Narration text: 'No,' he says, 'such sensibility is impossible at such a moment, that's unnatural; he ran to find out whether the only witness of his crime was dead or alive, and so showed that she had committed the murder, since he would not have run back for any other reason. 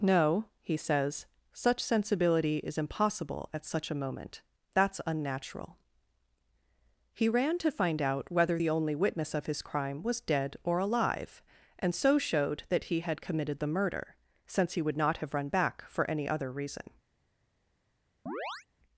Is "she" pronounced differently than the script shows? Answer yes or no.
yes